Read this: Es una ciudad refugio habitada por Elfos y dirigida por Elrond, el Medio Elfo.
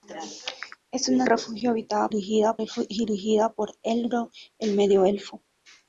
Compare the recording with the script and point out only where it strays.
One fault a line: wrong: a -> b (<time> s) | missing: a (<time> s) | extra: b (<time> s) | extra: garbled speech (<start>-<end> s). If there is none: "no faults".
missing: ciudad (1.3 s)
wrong: por -> dirigida (2.1 s)